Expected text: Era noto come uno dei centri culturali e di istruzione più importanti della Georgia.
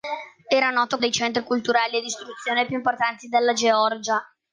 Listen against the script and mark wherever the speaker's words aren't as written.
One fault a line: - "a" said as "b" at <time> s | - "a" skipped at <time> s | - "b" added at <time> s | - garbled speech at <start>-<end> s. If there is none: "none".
- "come uno" skipped at 1.0 s